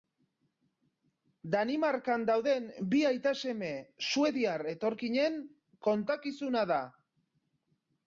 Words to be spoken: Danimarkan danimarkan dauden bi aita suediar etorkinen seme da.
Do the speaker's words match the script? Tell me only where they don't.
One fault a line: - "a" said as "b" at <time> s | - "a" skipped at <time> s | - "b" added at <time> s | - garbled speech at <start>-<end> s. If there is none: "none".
- "danimarkan" skipped at 2.2 s
- "seme" added at 3.4 s
- "seme" said as "kontakizuna" at 5.9 s